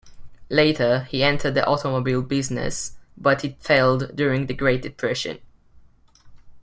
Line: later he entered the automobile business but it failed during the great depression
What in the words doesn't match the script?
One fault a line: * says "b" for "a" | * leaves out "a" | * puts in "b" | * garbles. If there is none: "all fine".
all fine